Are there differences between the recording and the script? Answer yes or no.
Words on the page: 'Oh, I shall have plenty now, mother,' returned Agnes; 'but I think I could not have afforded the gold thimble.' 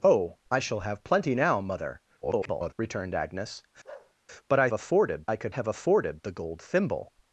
yes